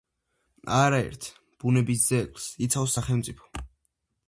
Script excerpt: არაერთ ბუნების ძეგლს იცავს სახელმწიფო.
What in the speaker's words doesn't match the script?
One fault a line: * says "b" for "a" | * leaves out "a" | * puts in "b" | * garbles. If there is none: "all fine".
all fine